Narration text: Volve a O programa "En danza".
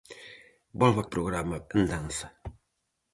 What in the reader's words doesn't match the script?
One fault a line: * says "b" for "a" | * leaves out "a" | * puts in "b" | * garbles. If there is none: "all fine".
all fine